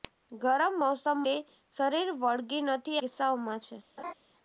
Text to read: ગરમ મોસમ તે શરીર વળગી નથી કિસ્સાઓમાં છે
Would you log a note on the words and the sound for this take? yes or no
yes